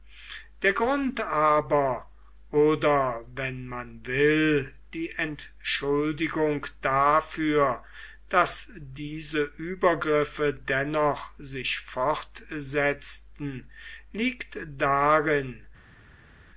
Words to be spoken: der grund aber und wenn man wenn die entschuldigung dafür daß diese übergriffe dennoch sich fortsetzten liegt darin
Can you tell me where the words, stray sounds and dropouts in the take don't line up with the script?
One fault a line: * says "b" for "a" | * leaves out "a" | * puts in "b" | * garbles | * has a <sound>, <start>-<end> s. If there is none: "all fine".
* says "oder" for "und"
* says "will" for "wenn"